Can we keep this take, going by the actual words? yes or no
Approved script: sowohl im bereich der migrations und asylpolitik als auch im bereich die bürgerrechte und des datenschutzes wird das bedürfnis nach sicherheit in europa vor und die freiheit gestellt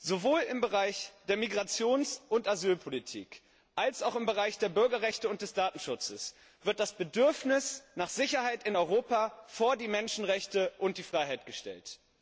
no